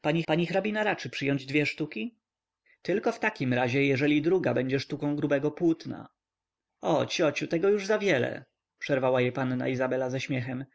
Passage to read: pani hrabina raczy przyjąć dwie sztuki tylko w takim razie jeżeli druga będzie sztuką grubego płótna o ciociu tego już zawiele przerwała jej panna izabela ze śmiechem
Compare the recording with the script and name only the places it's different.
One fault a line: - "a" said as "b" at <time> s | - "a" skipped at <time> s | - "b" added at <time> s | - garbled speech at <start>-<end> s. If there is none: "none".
- "pani" added at 0.2 s